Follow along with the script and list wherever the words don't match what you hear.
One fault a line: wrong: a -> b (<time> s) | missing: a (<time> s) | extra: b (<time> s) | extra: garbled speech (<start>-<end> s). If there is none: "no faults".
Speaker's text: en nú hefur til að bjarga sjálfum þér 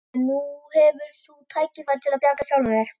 extra: þú tækifæri (1.2 s)